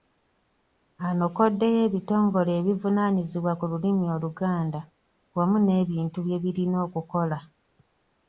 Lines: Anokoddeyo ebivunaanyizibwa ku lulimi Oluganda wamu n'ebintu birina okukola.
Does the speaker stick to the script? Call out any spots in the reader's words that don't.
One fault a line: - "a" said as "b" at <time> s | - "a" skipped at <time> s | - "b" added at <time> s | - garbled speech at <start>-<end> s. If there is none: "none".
- "ebitongole" added at 1.9 s
- "bye" added at 6.3 s